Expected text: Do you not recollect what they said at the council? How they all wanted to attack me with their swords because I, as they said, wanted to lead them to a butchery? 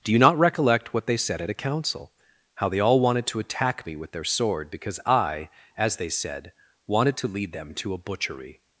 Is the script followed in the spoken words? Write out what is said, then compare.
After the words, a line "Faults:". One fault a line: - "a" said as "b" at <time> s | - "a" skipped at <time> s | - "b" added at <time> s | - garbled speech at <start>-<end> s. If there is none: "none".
Do you not recollect what they said at a council? How they all wanted to attack me with their sword because I, as they said, wanted to lead them to a butchery?
Faults:
- "the" said as "a" at 1.5 s
- "swords" said as "sword" at 4.2 s